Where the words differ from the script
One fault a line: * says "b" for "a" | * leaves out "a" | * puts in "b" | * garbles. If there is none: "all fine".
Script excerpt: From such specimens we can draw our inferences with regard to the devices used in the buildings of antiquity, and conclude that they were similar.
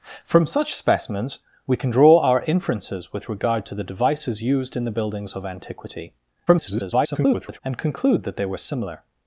* garbles